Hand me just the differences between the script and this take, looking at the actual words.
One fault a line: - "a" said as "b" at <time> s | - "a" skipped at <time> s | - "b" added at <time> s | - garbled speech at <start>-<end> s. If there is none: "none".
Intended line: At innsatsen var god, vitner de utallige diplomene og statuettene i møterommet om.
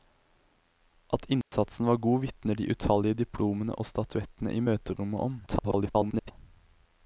- garbled speech at 5.5-6.3 s